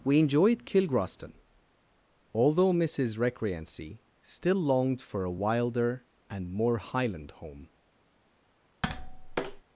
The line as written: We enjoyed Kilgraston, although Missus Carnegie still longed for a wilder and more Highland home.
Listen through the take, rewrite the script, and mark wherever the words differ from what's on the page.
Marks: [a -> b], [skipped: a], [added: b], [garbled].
We enjoyed Kilgraston, although Missus [Carnegie -> Recreancy] still longed for a wilder and more Highland home.